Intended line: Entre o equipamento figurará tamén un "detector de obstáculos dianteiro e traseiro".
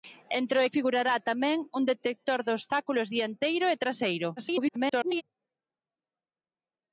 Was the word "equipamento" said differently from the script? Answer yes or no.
yes